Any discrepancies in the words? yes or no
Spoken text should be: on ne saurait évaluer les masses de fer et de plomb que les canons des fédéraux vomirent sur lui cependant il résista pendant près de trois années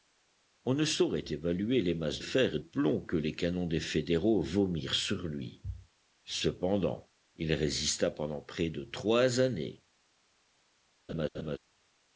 yes